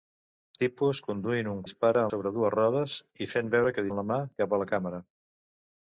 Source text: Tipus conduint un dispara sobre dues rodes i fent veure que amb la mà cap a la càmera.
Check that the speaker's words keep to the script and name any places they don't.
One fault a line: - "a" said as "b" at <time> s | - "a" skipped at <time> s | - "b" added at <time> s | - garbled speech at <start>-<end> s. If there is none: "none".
none